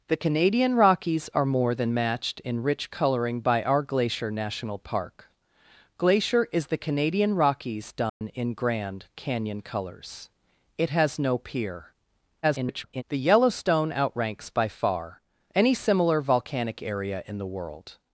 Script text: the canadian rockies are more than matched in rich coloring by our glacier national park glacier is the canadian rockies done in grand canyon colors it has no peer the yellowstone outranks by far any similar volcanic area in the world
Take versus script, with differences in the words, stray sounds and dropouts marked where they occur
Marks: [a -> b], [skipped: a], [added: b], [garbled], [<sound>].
the canadian rockies are more than matched in rich coloring by our glacier national park glacier is the canadian rockies done [dropout] in grand canyon colors it has no peer [garbled] the yellowstone outranks by far any similar volcanic area in the world